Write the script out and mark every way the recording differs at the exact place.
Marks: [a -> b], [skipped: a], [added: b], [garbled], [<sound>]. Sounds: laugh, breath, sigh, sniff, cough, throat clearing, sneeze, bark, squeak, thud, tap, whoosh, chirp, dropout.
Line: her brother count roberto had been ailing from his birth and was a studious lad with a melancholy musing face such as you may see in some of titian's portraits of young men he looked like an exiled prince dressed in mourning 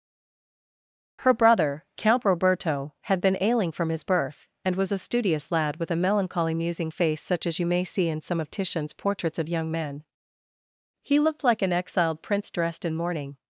her brother count roberto had been ailing from his birth and was a studious lad with a melancholy musing face such as you may see in some of titian's portraits of young men he looked like an exiled prince dressed in mourning